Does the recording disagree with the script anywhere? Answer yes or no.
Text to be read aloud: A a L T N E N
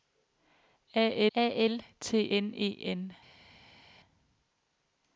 no